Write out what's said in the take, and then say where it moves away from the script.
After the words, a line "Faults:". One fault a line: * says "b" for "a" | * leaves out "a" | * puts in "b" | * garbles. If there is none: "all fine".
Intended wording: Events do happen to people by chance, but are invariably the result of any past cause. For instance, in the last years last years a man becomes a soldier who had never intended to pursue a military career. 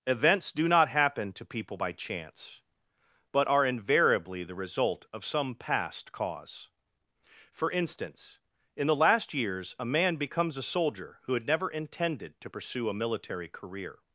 Events do not happen to people by chance, but are invariably the result of some past cause. For instance, in the last years a man becomes a soldier who had never intended to pursue a military career.
Faults:
* puts in "not"
* says "some" for "any"
* leaves out "last years"